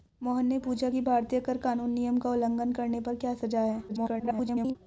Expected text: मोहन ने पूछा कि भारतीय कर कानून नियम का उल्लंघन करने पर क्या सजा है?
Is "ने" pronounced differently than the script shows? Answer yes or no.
no